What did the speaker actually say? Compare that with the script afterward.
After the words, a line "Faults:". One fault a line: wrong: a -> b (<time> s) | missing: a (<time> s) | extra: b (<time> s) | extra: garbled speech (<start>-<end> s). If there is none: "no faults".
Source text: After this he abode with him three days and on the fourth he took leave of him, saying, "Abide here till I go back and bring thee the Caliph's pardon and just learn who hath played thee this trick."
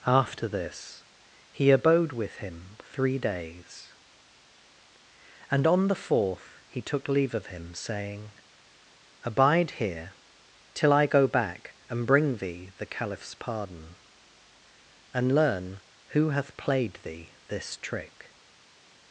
After this he abode with him three days and on the fourth he took leave of him, saying, "Abide here till I go back and bring thee the Caliph's pardon and learn who hath played thee this trick."
Faults:
missing: just (15.3 s)